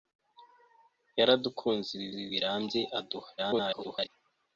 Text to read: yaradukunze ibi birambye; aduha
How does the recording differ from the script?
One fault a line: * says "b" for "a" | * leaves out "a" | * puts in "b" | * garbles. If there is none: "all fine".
* puts in "ibi"
* garbles